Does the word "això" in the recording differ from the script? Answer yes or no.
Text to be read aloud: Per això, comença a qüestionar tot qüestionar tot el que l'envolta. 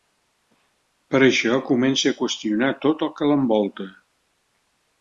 no